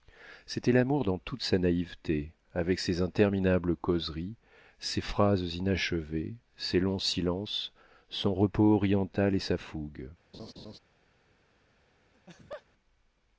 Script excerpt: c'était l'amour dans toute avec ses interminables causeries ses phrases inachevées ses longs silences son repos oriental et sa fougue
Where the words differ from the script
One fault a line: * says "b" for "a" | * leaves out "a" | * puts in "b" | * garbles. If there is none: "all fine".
* puts in "sa naïveté"